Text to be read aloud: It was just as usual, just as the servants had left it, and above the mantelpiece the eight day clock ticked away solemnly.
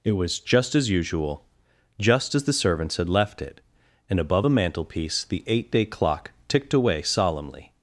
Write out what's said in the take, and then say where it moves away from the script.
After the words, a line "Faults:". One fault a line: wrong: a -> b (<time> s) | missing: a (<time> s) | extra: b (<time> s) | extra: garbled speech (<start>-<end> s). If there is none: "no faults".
It was just as usual, just as the servants had left it, and above a mantelpiece the eight day clock ticked away solemnly.
Faults:
wrong: the -> a (4.4 s)